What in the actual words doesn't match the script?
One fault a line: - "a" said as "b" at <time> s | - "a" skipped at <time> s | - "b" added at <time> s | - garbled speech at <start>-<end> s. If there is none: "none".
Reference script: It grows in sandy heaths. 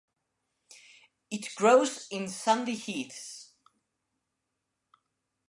none